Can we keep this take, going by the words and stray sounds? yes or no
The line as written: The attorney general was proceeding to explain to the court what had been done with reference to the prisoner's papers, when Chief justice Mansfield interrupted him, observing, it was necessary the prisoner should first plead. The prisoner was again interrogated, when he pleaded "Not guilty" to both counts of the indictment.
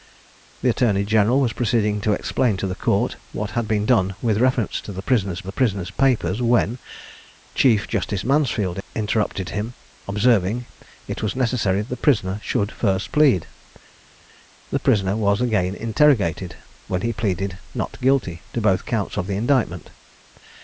no